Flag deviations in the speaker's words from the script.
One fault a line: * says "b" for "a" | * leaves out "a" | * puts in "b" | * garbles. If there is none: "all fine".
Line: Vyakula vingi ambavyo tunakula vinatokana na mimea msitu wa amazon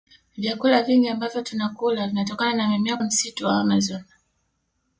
all fine